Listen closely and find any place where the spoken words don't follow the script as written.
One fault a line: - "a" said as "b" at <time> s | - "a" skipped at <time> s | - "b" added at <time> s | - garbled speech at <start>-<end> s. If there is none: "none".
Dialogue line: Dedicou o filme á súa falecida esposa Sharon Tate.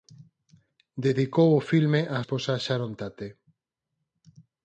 - "súa falecida" skipped at 2.2 s